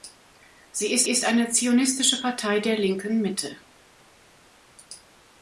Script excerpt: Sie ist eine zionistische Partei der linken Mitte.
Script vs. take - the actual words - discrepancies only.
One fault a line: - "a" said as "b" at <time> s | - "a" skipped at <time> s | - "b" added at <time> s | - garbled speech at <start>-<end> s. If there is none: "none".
- "ist" added at 1.1 s